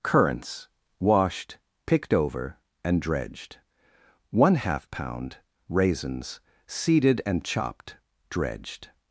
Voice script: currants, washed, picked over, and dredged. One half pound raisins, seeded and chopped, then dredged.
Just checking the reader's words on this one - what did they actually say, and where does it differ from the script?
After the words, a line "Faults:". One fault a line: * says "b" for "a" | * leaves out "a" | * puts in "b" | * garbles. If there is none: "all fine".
currants, washed, picked over, and dredged. One half pound raisins, seeded and chopped, dredged.
Faults:
* leaves out "then"